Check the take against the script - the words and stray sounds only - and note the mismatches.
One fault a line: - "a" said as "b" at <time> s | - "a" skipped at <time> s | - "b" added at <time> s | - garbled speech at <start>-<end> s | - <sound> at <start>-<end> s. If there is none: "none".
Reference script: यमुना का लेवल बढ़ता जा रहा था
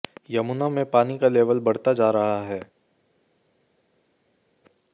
- "में पानी" added at 0.7 s
- "था" said as "है" at 2.4 s